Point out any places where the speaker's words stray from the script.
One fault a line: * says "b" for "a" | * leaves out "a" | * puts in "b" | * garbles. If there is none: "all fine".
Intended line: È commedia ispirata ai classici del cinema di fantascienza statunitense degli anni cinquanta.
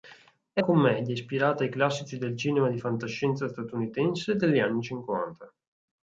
all fine